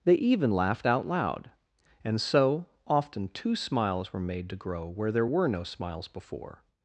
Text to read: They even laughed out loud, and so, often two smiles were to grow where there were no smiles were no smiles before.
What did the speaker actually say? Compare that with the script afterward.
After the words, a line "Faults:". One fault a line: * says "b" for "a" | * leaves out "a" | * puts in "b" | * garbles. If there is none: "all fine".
They even laughed out loud, and so, often two smiles were made to grow where there were no smiles before.
Faults:
* puts in "made"
* leaves out "were no smiles"